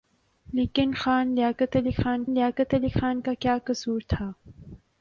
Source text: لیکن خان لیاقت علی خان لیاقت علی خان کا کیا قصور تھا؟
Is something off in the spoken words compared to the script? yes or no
no